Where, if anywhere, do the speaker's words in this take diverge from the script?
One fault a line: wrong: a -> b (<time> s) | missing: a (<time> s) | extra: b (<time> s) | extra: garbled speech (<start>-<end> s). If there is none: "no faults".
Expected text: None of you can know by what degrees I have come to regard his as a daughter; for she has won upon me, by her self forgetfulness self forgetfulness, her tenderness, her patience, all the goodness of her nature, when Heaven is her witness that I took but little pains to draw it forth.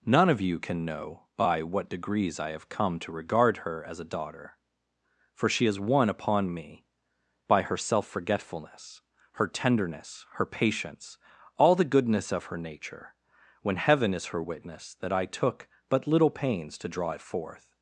wrong: his -> her (3.6 s)
missing: self forgetfulness (9.0 s)